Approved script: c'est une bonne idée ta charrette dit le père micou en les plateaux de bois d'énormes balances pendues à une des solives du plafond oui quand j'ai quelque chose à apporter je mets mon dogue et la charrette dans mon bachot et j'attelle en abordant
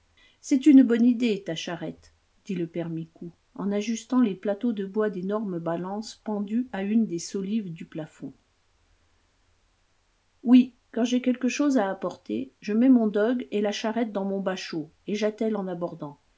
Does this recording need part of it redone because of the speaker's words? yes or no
yes